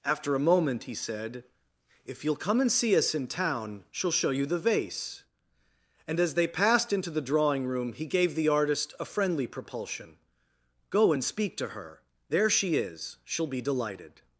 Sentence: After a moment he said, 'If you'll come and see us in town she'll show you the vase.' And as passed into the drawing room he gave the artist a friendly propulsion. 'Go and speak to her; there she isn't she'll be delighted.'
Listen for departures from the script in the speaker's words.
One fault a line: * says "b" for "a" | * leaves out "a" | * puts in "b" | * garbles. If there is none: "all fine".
* puts in "they"
* says "is" for "isn't"